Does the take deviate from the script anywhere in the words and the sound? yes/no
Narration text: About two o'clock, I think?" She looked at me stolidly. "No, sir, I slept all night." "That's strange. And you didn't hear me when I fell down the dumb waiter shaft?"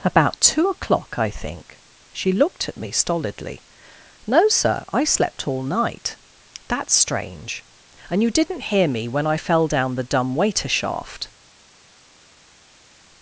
no